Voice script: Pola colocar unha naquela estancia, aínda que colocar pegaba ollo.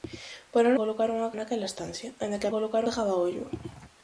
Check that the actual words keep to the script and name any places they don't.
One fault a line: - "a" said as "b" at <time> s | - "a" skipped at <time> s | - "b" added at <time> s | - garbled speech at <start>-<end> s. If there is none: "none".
none